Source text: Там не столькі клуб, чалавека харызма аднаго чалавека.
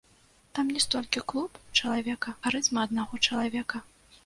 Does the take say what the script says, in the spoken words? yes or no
yes